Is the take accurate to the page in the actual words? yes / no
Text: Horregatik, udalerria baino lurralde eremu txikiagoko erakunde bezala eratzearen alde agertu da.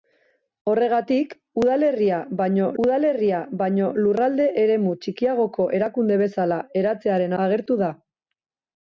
no